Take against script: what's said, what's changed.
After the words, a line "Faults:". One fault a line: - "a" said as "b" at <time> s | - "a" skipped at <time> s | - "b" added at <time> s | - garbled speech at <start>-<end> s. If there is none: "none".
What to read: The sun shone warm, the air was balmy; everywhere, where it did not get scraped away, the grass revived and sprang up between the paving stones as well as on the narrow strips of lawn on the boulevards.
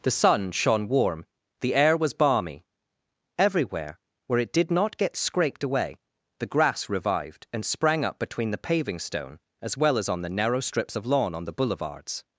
The sun shone warm, the air was balmy; everywhere, where it did not get scraped away, the grass revived and sprang up between the paving stone as well as on the narrow strips of lawn on the boulevards.
Faults:
- "stones" said as "stone" at 9.0 s